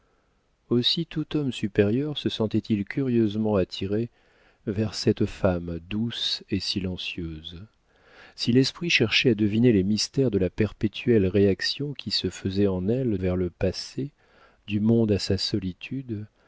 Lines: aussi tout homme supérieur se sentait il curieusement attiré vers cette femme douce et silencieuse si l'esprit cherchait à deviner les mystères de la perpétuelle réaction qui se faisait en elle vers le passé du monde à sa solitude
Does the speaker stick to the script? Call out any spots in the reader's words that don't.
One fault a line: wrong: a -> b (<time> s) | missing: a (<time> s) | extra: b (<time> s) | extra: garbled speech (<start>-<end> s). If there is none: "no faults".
no faults